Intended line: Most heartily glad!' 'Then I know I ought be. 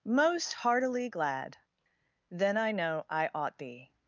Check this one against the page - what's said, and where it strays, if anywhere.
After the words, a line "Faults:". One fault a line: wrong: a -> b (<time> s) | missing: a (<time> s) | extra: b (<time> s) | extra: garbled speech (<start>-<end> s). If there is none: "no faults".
Most heartily glad!' 'Then I know I ought be.
Faults:
no faults